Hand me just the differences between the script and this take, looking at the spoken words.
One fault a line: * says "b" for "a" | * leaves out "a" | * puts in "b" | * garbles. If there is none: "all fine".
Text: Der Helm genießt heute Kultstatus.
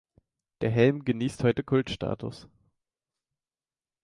all fine